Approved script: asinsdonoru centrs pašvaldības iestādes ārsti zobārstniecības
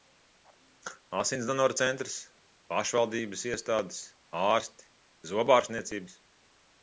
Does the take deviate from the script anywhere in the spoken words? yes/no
no